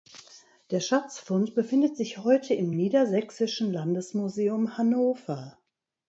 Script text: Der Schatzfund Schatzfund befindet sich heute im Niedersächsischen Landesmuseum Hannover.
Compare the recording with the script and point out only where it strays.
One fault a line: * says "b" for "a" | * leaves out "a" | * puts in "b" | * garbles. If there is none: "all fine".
* leaves out "Schatzfund"